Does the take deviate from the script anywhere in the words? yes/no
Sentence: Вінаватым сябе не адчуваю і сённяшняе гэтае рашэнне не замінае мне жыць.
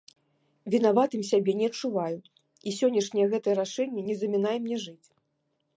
no